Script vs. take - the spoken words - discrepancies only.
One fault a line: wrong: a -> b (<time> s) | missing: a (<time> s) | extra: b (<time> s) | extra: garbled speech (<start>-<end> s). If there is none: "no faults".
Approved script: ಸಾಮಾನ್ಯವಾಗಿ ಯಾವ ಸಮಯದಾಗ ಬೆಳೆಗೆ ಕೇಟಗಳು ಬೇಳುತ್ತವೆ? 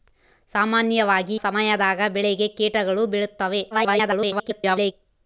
missing: ಯಾವ (1.4 s)
extra: garbled speech (3.7-4.9 s)